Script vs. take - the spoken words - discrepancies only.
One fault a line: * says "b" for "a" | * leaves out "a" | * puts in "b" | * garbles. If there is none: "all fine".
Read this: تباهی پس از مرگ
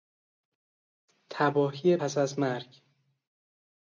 all fine